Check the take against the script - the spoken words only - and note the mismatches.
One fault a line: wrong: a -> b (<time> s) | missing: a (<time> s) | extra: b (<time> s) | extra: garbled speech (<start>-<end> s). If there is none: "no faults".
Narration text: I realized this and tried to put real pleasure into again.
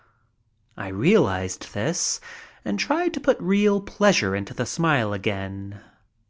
extra: the smile (4.5 s)